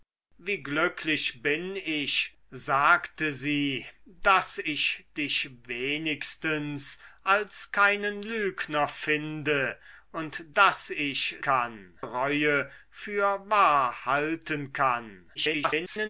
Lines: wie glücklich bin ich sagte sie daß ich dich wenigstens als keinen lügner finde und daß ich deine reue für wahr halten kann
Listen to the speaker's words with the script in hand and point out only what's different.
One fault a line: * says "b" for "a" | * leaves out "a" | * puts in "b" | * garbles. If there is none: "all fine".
* says "kann" for "deine"
* garbles